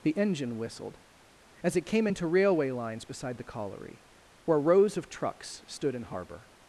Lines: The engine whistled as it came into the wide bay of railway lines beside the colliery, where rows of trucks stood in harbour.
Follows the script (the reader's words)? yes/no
no